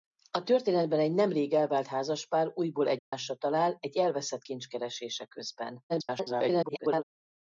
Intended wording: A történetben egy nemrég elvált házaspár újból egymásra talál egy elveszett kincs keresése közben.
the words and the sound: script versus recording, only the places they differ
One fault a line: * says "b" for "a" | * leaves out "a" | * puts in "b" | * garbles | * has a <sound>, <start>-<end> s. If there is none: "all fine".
* has a dropout, 3.0-3.1 s
* garbles